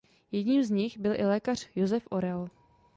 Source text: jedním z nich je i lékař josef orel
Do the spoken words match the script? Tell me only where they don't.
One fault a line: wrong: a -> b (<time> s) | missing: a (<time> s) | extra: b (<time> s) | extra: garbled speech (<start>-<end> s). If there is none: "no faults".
wrong: je -> byl (1.0 s)